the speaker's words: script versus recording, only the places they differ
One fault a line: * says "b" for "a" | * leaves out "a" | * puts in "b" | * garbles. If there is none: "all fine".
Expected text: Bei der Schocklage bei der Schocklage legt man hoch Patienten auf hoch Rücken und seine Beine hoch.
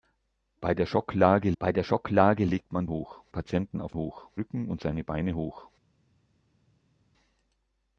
all fine